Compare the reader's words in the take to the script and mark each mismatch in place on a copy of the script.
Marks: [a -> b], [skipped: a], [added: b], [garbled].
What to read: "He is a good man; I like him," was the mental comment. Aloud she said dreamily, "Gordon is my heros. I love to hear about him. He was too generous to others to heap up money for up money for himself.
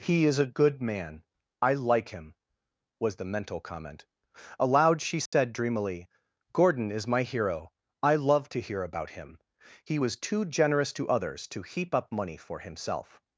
"He is a good man; I like him," was the mental comment. Aloud she said dreamily, "Gordon is my [heros. -> hero] I love to hear about him. He was too generous to others to heap up money for [skipped: up money for] himself.